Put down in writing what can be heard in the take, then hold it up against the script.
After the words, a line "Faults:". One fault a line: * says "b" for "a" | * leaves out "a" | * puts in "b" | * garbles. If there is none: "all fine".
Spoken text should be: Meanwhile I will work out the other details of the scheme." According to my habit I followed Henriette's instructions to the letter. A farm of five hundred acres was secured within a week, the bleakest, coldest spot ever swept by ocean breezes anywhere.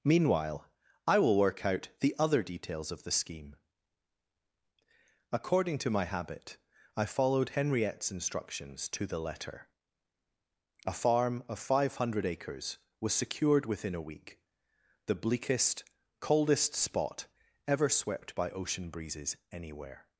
Meanwhile I will work out the other details of the scheme." According to my habit I followed Henriette's instructions to the letter. A farm of five hundred acres was secured within a week, the bleakest, coldest spot ever swept by ocean breezes anywhere.
Faults:
all fine